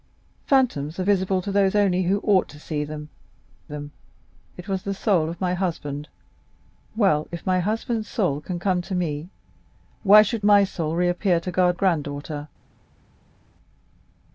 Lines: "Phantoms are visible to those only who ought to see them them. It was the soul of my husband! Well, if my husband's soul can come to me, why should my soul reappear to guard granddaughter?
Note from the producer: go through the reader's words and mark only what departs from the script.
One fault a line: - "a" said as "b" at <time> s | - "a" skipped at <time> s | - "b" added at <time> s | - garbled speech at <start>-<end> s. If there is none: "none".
none